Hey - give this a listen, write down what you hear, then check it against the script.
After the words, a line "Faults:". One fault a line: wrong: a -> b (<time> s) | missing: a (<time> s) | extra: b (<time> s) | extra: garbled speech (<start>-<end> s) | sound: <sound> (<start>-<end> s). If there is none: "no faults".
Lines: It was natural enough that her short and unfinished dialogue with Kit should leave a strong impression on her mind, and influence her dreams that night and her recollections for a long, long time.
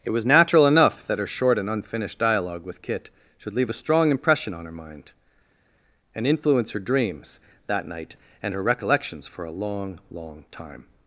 It was natural enough that her short and unfinished dialogue with Kit should leave a strong impression on her mind, and influence her dreams that night and her recollections for a long, long time.
Faults:
no faults